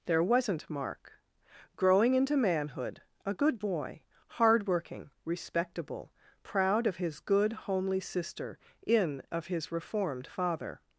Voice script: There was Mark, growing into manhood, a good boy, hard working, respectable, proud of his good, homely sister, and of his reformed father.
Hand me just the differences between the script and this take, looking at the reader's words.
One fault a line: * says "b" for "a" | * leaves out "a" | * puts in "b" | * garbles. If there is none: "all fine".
* says "wasn't" for "was"
* says "in" for "and"